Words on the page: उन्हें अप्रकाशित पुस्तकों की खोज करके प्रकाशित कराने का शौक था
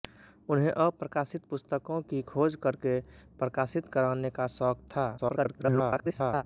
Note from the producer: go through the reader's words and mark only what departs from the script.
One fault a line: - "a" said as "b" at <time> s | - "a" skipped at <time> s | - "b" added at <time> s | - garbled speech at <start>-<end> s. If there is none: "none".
- garbled speech at 5.2-6.4 s